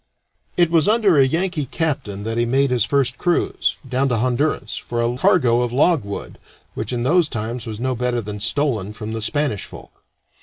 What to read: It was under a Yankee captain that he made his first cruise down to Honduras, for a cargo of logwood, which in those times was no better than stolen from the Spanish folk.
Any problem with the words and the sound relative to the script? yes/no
no